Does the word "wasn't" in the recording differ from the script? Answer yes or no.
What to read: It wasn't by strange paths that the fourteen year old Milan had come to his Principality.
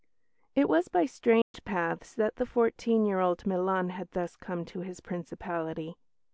yes